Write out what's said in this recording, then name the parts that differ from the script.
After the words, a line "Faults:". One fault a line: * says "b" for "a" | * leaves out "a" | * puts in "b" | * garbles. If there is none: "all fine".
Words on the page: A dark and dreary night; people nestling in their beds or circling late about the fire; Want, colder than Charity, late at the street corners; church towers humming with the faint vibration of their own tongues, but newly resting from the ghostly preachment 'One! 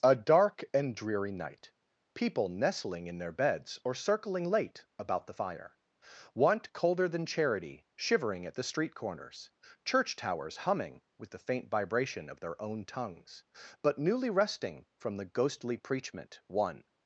A dark and dreary night; people nestling in their beds or circling late about the fire; Want, colder than Charity, shivering at the street corners; church towers humming with the faint vibration of their own tongues, but newly resting from the ghostly preachment 'One!
Faults:
* says "shivering" for "late"